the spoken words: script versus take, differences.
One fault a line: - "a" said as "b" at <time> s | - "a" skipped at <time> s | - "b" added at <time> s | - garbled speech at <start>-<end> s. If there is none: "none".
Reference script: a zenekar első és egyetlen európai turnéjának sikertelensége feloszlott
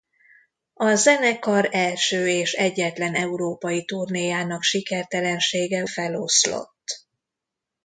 none